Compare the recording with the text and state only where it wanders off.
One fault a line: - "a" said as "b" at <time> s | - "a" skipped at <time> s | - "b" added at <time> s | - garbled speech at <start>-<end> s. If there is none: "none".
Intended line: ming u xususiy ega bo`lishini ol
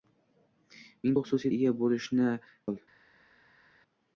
none